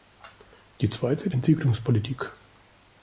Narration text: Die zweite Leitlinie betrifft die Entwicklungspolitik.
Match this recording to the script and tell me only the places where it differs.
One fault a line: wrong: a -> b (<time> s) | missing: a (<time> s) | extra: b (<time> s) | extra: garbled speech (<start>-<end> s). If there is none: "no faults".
missing: Leitlinie betrifft die (1.3 s)